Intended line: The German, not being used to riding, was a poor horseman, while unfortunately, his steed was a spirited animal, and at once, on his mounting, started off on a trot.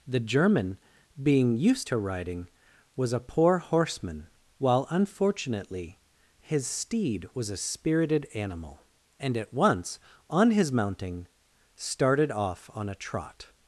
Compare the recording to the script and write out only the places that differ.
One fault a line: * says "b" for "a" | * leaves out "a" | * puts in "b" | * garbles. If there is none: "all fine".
* leaves out "not"